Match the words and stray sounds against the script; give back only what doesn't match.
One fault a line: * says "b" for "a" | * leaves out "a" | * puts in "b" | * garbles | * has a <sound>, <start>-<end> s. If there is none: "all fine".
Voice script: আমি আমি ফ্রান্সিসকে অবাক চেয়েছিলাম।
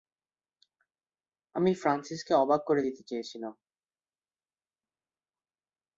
* leaves out "আমি"
* puts in "করে দিতে"